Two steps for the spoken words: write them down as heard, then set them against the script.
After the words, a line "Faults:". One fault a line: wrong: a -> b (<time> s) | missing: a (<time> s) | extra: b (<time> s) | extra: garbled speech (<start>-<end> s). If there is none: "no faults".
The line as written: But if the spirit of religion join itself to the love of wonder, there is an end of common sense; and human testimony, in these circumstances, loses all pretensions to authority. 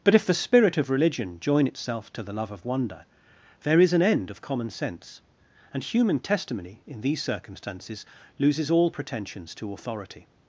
But if the spirit of religion join itself to the love of wonder, there is an end of common sense; and human testimony, in these circumstances, loses all pretensions to authority.
Faults:
no faults